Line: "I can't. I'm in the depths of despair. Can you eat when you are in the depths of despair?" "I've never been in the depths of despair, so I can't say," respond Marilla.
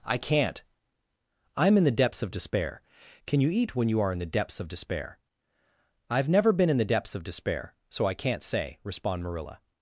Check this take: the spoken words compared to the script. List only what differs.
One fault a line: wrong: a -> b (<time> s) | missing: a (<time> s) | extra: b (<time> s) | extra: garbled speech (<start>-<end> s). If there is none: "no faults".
no faults